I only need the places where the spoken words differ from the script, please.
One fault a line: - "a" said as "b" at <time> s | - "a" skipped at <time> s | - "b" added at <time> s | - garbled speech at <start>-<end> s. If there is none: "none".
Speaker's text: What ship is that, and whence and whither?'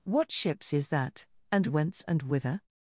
- "ship" said as "ships" at 0.3 s